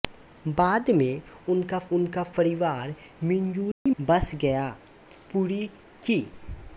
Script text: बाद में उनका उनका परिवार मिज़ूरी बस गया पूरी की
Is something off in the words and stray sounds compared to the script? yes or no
yes